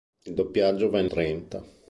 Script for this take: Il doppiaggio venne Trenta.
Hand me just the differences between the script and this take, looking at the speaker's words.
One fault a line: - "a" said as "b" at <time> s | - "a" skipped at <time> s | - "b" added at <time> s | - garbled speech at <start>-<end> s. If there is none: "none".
none